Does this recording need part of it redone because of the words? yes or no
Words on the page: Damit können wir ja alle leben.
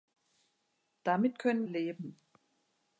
yes